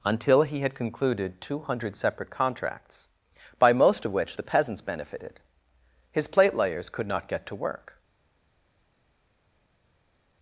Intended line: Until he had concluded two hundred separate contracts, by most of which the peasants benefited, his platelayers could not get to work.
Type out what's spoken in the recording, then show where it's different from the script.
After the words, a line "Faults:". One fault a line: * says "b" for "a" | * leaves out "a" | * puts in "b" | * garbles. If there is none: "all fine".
Until he had concluded two hundred separate contracts, by most of which the peasants benefited, his platelayers could not get to work.
Faults:
all fine